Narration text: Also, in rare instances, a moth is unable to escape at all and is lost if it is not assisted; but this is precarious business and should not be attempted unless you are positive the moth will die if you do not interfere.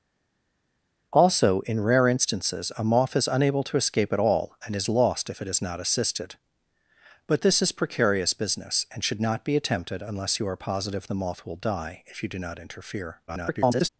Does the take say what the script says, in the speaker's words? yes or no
no